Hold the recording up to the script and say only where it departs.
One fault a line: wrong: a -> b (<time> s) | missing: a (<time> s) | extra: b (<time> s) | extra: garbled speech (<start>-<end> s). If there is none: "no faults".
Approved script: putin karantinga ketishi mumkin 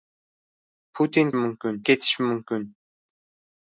wrong: karantinga -> mumkin (1.4 s)